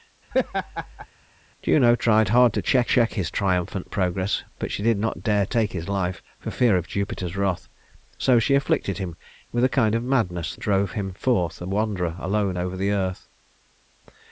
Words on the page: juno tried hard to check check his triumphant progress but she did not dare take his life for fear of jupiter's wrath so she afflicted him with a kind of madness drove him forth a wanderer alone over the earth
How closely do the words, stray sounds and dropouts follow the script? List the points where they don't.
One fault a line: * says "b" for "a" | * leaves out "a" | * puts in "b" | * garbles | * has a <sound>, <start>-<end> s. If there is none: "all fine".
* has a laugh, 0.3-1.1 s